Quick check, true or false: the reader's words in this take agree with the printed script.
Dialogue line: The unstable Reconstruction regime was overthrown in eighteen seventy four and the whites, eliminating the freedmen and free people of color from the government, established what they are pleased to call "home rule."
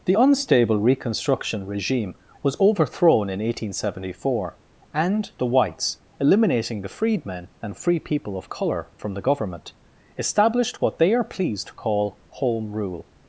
true